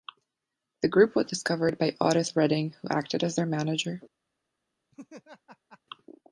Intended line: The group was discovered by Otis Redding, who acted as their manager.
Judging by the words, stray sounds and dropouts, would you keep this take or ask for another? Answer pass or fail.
fail